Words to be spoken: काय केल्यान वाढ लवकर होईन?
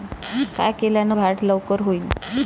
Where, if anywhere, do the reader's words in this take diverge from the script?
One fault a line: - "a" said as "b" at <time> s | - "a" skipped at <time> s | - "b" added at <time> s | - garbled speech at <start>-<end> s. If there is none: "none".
none